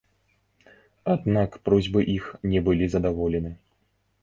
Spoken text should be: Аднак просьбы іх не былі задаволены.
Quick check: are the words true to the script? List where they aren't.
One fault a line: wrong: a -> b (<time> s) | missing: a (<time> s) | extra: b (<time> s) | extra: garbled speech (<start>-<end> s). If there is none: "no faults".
no faults